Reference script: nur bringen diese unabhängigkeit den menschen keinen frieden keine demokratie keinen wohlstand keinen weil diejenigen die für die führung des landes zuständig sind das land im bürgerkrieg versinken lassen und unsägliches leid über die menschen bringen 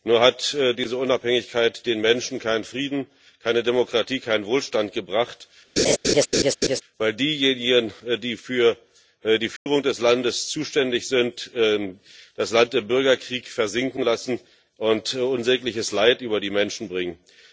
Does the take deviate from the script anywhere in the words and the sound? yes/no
yes